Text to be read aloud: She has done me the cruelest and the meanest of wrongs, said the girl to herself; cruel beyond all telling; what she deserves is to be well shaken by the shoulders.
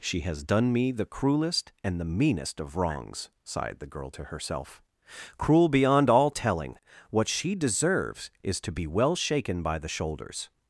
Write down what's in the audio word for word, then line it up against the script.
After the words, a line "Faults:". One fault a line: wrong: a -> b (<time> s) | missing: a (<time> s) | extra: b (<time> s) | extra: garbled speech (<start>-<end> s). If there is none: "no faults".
She has done me the cruelest and the meanest of wrongs, sighed the girl to herself; cruel beyond all telling; what she deserves is to be well shaken by the shoulders.
Faults:
wrong: said -> sighed (3.4 s)